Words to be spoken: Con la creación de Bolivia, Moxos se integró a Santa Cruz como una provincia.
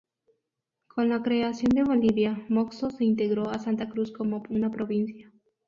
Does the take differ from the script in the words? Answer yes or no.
no